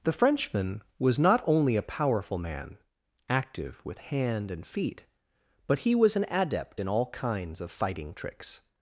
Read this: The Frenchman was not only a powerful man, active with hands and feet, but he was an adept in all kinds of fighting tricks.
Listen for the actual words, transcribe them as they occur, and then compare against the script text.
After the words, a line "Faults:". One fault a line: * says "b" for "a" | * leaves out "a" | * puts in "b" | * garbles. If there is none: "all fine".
The Frenchman was not only a powerful man, active with hand and feet, but he was an adept in all kinds of fighting tricks.
Faults:
* says "hand" for "hands"